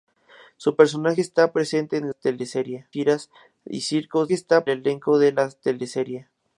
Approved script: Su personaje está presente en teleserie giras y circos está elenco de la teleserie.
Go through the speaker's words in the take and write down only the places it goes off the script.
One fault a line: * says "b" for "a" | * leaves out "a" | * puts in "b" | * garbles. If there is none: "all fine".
all fine